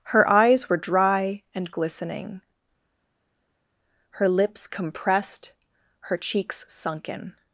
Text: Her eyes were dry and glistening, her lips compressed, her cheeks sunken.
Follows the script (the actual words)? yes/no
yes